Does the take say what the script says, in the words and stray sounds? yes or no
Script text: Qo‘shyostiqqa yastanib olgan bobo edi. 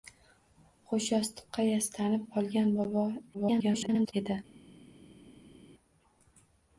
no